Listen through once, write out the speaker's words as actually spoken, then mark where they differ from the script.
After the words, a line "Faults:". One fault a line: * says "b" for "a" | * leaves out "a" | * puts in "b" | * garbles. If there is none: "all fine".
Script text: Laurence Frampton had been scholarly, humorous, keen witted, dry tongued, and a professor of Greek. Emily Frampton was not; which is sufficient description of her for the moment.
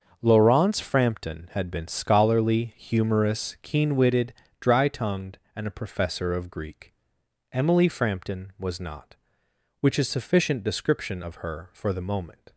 Laurence Frampton had been scholarly, humorous, keen witted, dry tongued, and a professor of Greek. Emily Frampton was not; which is sufficient description of her for the moment.
Faults:
all fine